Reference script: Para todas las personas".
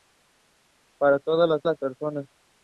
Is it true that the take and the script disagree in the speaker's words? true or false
true